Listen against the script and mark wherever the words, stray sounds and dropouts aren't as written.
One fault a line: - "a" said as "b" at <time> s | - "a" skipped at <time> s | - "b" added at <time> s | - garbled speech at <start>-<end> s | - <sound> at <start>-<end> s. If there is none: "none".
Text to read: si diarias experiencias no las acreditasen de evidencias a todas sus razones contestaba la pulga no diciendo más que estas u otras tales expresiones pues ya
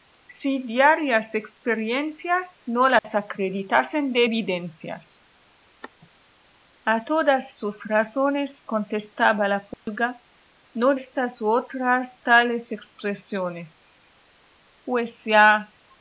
- dropout at 3.0-3.0 s
- dropout at 9.7-9.9 s
- "diciendo más que" skipped at 11.0 s